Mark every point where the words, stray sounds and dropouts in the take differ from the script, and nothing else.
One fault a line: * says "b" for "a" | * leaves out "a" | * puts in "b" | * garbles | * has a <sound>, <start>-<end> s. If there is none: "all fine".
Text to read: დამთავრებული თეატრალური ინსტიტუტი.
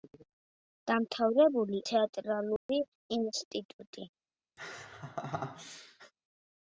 * has a dropout, 2.6-2.7 s
* has a laugh, 4.6-6.1 s